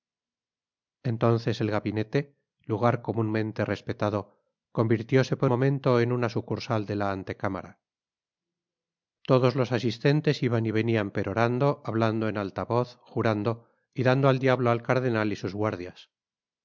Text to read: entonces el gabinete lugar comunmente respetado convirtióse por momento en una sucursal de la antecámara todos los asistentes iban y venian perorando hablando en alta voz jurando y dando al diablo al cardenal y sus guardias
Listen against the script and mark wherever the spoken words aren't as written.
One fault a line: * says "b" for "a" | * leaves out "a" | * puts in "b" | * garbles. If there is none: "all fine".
all fine